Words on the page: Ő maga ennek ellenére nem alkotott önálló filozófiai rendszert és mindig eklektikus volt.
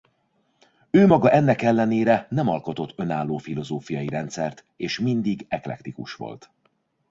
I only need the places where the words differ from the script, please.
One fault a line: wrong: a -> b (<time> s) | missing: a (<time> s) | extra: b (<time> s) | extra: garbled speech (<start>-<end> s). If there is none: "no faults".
no faults